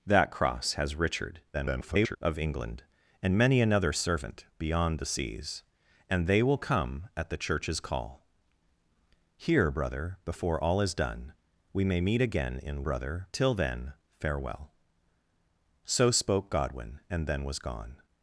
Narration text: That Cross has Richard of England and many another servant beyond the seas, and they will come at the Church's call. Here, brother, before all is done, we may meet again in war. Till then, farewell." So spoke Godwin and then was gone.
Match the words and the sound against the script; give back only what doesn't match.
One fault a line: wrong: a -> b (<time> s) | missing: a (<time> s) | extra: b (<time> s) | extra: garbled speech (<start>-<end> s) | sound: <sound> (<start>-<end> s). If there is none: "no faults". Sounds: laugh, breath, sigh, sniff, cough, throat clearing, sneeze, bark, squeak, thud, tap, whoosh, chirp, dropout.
extra: garbled speech (1.5-2.2 s)
wrong: war -> brother (12.8 s)